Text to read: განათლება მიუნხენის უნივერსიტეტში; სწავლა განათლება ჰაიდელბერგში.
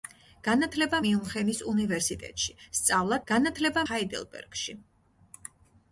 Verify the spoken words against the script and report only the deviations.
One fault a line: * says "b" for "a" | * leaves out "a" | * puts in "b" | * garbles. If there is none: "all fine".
all fine